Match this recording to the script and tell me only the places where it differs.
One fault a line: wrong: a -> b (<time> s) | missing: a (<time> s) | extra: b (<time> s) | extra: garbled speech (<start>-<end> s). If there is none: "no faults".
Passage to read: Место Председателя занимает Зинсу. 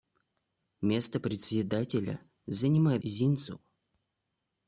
no faults